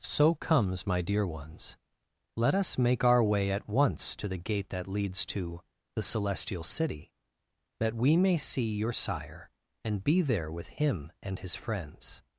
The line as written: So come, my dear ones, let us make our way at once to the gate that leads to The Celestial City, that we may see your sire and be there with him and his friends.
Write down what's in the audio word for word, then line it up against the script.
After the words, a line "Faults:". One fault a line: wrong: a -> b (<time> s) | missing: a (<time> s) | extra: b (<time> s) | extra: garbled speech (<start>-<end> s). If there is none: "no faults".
So comes, my dear ones, let us make our way at once to the gate that leads to The Celestial City, that we may see your sire and be there with him and his friends.
Faults:
wrong: come -> comes (0.3 s)